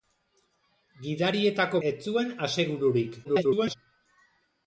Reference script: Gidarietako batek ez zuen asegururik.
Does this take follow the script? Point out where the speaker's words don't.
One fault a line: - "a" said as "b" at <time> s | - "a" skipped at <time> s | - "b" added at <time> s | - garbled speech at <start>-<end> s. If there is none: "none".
- "batek" skipped at 1.8 s
- garbled speech at 3.2-3.7 s